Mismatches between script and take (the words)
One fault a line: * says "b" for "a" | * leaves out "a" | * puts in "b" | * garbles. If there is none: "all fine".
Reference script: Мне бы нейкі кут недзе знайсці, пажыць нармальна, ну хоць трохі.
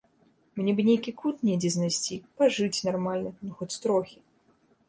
all fine